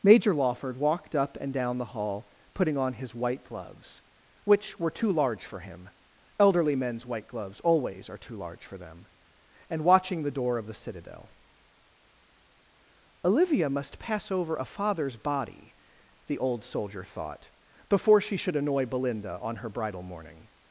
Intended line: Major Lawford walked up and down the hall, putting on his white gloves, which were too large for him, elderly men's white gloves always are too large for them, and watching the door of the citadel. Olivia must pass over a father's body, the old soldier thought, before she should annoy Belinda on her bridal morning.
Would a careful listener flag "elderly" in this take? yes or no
no